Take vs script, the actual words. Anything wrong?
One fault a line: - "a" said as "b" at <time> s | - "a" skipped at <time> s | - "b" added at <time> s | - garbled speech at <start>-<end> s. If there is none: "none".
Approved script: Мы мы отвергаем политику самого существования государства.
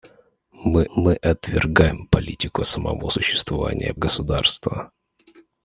none